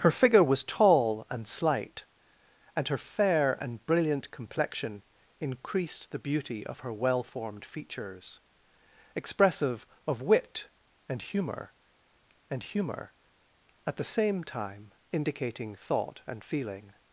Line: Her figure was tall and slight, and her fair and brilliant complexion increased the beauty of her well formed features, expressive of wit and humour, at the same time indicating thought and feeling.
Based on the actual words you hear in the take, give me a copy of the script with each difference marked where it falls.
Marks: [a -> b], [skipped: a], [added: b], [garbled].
Her figure was tall and slight, and her fair and brilliant complexion increased the beauty of her well formed features, expressive of wit and humour, [added: and humour] at the same time indicating thought and feeling.